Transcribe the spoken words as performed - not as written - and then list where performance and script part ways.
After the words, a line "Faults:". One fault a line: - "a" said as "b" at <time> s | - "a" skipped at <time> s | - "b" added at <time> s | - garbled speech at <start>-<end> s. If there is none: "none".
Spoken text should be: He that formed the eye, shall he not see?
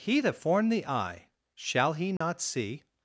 He that formed the eye, shall he not see?
Faults:
none